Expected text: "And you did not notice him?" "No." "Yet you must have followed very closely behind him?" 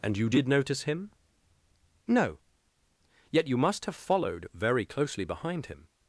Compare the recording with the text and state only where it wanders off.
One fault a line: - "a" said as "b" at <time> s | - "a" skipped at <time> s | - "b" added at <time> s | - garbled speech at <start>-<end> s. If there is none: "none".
- "not" skipped at 0.5 s